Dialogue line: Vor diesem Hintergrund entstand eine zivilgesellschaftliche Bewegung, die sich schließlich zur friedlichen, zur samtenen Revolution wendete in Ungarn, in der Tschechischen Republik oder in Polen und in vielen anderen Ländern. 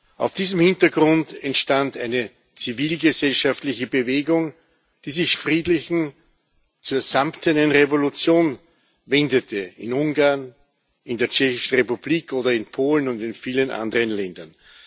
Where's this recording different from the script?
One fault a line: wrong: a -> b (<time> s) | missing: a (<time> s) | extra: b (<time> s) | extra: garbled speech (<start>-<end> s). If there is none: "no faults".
missing: schließlich zur (5.3 s)